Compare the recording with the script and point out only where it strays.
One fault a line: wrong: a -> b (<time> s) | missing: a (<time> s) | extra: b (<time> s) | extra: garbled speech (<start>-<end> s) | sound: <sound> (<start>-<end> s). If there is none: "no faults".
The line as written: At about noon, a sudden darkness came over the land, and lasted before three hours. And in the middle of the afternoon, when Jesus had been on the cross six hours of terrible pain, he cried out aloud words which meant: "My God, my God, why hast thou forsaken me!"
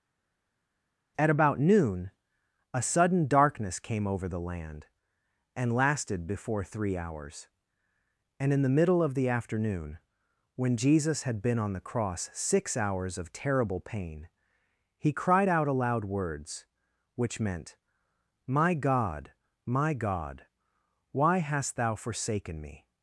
no faults